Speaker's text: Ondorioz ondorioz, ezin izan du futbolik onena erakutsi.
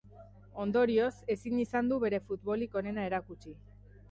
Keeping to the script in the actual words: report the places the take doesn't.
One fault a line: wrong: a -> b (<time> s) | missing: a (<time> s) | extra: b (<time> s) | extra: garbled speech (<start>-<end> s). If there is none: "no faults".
missing: ondorioz (1.1 s)
extra: bere (2.0 s)